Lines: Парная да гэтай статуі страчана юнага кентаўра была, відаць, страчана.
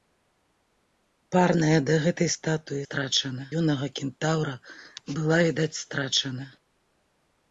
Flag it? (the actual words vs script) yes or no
no